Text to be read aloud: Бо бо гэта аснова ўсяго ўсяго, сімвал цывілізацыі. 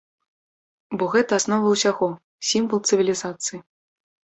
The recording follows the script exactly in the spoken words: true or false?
false